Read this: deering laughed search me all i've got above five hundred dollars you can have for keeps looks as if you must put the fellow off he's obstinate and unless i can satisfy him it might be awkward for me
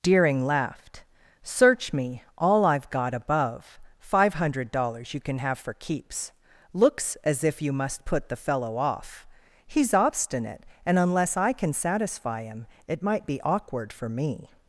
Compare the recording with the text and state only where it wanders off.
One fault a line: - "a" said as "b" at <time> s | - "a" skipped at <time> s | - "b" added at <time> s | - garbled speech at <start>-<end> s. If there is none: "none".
none